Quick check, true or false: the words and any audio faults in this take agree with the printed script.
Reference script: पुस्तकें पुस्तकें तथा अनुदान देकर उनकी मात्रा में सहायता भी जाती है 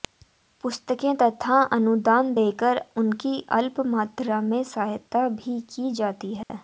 false